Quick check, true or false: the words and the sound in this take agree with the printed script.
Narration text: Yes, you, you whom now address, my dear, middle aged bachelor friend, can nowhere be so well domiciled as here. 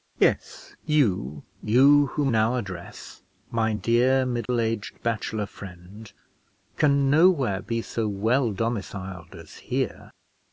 false